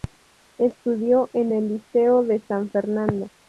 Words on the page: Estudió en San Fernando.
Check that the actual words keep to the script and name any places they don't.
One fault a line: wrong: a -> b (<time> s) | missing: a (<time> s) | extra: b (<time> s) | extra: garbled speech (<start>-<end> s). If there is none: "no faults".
extra: el Liceo de (1.5 s)